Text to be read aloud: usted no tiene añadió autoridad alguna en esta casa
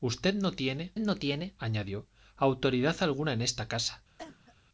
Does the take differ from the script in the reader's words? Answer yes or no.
yes